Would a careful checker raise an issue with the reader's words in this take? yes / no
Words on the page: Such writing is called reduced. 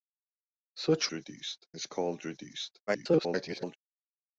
yes